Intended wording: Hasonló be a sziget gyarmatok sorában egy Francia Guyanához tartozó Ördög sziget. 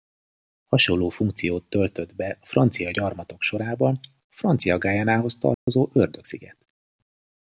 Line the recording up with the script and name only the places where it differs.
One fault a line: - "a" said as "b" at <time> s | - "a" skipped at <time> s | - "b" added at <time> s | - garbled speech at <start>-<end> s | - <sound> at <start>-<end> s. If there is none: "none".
- "funkciót töltött" added at 1.1 s
- "sziget" said as "francia" at 2.5 s
- "egy" said as "a" at 4.0 s
- dropout at 5.5-5.7 s